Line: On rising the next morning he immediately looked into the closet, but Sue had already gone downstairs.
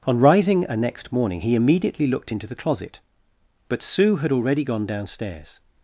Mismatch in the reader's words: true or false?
true